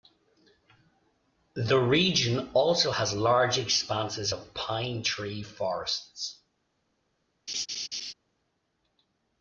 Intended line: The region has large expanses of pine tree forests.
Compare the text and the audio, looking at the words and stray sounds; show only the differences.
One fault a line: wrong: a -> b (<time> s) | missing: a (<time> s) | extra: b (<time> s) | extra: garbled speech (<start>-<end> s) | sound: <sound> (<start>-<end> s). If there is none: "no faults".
extra: also (2.5 s)
sound: laugh (7.5-8.1 s)